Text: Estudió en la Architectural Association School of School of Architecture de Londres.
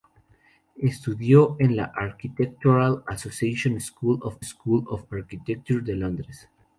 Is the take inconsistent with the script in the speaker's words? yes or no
no